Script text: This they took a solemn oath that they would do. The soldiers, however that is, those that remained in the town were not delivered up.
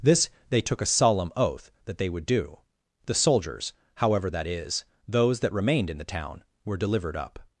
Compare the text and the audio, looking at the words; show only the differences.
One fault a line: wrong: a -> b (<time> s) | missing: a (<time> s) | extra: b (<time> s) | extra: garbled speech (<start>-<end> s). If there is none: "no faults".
missing: not (6.8 s)